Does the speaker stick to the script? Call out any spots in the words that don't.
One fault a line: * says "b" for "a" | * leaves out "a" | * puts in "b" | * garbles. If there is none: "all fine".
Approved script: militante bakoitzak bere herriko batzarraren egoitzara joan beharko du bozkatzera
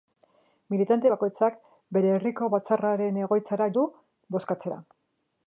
* leaves out "joan beharko"